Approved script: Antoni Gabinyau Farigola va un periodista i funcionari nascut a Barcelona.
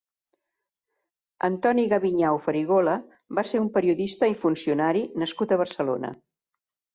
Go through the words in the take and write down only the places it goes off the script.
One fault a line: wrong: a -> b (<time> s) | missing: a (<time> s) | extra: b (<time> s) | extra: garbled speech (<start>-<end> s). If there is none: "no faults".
extra: ser (3.5 s)